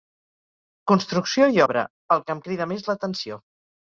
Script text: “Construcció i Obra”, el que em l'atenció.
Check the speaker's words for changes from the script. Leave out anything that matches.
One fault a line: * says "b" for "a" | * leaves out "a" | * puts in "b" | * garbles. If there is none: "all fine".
* puts in "crida més"